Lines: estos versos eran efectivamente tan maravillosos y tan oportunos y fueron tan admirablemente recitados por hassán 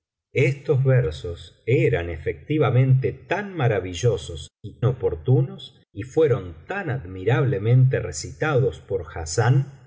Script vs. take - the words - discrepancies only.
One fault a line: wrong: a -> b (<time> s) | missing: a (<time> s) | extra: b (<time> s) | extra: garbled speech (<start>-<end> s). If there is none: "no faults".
missing: tan (4.8 s)